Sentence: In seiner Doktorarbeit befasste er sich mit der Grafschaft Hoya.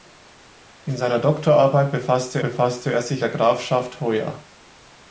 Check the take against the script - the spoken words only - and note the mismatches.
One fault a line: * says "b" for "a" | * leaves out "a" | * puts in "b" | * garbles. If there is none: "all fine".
* puts in "befasste"
* leaves out "mit"